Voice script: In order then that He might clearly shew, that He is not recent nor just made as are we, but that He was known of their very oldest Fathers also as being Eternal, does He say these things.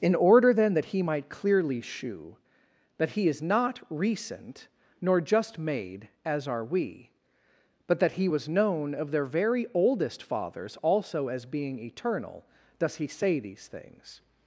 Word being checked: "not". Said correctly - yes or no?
yes